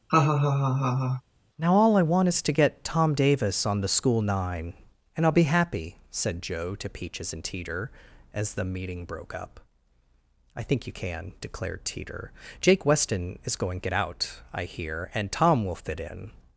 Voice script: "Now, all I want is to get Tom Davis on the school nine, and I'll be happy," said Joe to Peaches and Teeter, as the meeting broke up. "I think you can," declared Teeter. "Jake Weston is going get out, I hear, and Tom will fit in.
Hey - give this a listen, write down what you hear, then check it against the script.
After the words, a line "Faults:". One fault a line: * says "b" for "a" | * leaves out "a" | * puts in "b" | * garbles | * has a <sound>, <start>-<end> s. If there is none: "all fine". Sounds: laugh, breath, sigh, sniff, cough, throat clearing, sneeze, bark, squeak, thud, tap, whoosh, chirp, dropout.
"Now, all I want is to get Tom Davis on the school nine, and I'll be happy," said Joe to Peaches and Teeter, as the meeting broke up. "I think you can," declared Teeter. "Jake Weston is going get out, I hear, and Tom will fit in.
Faults:
* has a laugh, 0.1-1.2 s